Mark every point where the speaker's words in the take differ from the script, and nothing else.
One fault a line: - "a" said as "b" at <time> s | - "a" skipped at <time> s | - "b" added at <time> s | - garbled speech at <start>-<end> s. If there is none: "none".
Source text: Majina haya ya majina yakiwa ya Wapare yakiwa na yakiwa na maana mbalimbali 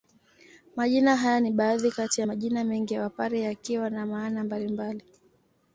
- "ni baadhi kati" added at 1.4 s
- "yakiwa" said as "mengi" at 2.6 s
- "yakiwa na" skipped at 4.1 s